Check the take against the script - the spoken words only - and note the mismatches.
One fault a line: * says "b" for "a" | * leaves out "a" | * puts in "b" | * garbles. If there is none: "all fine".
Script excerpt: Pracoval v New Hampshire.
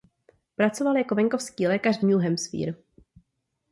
* puts in "jako venkovský lékař"